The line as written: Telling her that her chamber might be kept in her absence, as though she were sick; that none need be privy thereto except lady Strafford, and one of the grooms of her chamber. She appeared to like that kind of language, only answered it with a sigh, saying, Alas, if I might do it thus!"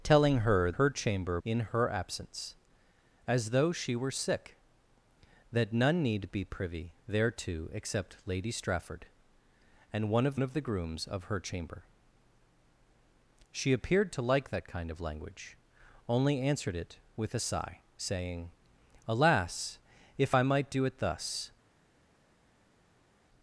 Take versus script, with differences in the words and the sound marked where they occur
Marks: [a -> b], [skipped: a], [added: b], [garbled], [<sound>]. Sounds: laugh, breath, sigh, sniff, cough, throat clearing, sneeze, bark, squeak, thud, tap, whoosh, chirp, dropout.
Telling her [skipped: that] her chamber [skipped: might be kept] in her absence, as though she were sick; that none need be privy thereto except lady Strafford, and one of [added: of] the grooms of her chamber. She appeared to like that kind of language, only answered it with a sigh, saying, Alas, if I might do it thus!"